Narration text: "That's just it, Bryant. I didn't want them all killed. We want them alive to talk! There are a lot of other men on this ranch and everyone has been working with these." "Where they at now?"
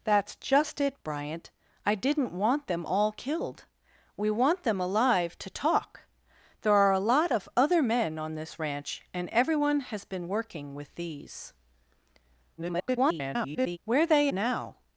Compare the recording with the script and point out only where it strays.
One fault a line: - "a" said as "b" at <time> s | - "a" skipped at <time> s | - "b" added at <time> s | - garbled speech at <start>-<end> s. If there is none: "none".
- garbled speech at 12.6-13.8 s
- "at" skipped at 14.3 s